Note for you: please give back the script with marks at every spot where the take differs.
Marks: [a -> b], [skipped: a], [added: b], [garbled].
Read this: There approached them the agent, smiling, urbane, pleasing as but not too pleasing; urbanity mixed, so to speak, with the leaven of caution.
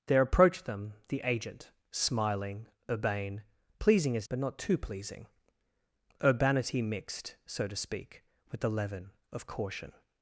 There approached them the agent, smiling, urbane, pleasing as but not too pleasing; urbanity mixed, so to speak, with the leaven of caution.